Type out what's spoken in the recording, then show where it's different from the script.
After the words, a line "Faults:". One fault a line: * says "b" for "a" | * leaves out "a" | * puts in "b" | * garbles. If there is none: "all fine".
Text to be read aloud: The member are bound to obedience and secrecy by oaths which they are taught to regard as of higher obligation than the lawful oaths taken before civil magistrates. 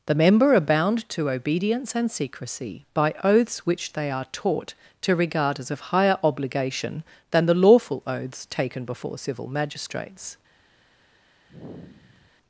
The member are bound to obedience and secrecy by oaths which they are taught to regard as of higher obligation than the lawful oaths taken before civil magistrates.
Faults:
all fine